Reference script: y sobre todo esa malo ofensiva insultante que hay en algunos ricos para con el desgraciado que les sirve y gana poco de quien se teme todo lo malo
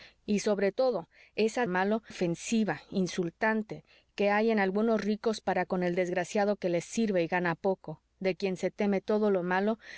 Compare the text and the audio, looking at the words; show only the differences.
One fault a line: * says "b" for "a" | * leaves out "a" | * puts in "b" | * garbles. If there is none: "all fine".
all fine